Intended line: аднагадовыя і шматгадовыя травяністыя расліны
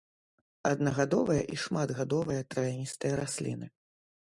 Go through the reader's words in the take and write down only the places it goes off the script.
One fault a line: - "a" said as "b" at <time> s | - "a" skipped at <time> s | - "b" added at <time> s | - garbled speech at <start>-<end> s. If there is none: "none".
none